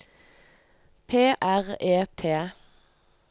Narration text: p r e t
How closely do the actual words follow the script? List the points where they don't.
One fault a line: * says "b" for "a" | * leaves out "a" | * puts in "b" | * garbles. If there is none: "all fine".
all fine